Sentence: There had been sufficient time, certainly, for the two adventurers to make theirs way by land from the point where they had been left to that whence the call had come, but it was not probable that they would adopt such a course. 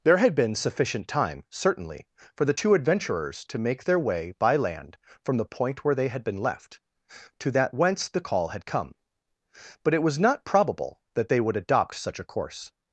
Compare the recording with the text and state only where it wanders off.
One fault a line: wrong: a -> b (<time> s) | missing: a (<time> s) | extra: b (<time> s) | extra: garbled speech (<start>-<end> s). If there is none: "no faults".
wrong: theirs -> their (3.8 s)